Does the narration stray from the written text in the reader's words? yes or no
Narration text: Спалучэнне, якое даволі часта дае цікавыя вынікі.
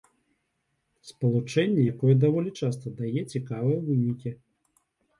no